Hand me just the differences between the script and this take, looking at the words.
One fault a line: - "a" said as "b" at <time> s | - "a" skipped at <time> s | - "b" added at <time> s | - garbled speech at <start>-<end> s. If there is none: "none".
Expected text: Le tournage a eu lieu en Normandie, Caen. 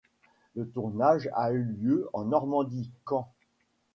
none